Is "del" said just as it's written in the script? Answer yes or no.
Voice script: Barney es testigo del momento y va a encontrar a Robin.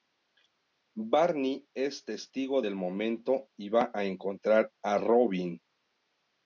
yes